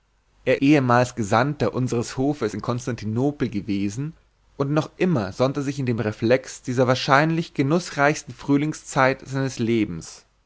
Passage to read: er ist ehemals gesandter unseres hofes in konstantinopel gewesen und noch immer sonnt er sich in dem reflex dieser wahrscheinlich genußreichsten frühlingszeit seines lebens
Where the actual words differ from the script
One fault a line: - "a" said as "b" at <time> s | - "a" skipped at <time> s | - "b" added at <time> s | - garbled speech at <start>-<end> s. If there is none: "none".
- "ist" skipped at 0.6 s